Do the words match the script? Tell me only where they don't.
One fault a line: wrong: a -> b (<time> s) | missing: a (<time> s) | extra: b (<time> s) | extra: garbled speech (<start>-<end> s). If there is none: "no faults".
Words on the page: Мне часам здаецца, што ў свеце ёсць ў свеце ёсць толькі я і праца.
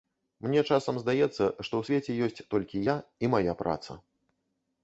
missing: ў свеце ёсць (2.5 s)
extra: мая (3.4 s)